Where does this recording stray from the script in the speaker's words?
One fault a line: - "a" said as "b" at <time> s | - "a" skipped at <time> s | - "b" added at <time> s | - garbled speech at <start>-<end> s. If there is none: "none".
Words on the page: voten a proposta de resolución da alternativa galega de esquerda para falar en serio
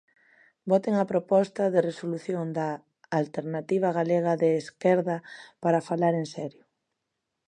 none